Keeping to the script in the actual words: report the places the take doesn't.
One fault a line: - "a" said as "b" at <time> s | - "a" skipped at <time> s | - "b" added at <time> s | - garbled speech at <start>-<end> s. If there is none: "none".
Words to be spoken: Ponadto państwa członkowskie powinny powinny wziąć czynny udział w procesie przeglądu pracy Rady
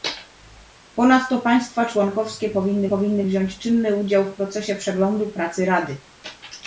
none